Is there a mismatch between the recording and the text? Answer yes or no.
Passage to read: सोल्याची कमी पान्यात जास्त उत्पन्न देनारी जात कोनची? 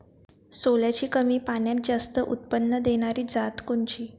no